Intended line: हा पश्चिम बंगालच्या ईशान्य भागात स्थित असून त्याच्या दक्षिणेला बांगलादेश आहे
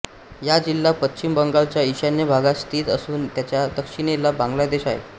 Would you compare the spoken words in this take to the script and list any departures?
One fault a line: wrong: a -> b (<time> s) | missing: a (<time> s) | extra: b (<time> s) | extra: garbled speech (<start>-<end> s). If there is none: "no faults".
extra: जिल्हा (0.6 s)